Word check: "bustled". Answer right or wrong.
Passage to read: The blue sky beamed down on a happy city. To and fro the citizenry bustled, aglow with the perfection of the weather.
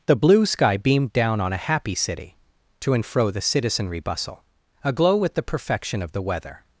wrong